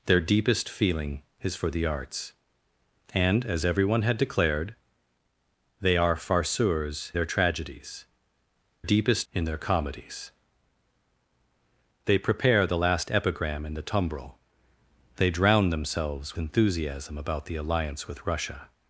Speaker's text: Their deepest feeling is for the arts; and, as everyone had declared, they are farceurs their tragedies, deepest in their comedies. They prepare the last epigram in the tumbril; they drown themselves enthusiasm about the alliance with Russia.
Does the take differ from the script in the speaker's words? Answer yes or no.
no